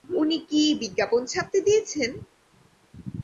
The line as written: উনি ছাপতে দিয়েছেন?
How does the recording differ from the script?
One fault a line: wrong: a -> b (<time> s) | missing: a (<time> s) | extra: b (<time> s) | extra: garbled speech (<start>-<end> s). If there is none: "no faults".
extra: কি বিজ্ঞাপন (0.5 s)